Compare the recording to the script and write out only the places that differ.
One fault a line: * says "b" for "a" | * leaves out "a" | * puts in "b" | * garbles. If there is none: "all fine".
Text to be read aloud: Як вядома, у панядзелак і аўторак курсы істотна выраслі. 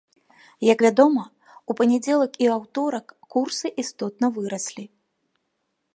all fine